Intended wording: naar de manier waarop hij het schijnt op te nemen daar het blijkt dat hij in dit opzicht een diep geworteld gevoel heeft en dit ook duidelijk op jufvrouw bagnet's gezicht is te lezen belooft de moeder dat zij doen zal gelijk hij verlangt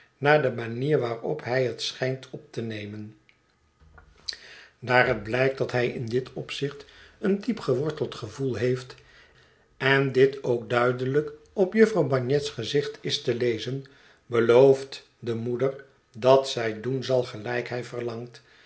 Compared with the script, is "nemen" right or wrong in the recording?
right